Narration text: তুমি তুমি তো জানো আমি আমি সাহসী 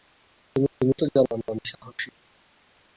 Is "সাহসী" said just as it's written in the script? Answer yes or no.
yes